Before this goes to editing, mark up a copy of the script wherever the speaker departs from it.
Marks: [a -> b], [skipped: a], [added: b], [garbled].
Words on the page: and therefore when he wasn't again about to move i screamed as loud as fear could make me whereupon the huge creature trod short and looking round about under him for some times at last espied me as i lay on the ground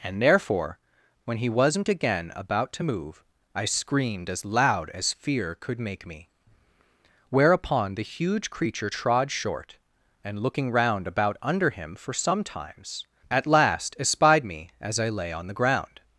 and therefore when he wasn't again about to move i screamed as loud as fear could make me whereupon the huge creature trod short and looking round about under him for some times at last espied me as i lay on the ground